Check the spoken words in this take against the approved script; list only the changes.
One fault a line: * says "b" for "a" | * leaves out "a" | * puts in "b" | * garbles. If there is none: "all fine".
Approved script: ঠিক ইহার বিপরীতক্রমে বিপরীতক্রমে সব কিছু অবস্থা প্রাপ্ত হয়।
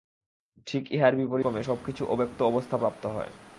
* leaves out "বিপরীতক্রমে"
* puts in "অব্যক্ত"